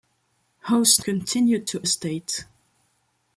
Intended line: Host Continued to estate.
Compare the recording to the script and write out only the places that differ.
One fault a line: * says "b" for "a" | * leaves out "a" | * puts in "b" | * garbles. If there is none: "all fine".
all fine